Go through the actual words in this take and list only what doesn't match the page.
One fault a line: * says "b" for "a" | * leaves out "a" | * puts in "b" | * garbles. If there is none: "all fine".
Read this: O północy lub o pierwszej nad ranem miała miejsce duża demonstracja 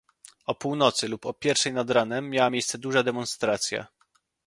all fine